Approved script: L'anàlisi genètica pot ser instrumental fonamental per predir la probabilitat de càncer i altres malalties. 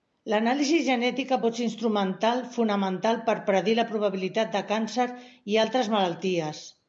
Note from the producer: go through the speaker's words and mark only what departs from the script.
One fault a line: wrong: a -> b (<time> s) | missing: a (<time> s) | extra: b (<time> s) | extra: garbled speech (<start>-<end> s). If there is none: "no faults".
no faults